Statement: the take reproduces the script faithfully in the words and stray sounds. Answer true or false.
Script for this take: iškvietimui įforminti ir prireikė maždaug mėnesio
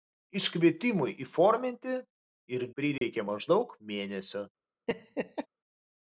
false